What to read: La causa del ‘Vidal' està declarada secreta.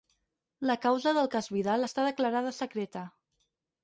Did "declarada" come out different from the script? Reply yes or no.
no